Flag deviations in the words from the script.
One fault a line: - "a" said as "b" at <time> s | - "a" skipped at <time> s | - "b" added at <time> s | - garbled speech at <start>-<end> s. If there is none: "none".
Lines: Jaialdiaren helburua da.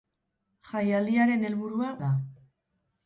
none